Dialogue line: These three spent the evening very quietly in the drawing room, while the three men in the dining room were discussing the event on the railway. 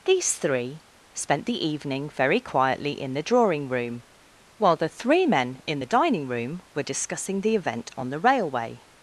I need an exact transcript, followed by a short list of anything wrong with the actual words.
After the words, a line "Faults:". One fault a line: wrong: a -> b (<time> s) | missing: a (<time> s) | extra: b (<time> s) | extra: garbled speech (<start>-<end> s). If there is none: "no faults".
These three spent the evening very quietly in the drawing room, while the three men in the dining room were discussing the event on the railway.
Faults:
no faults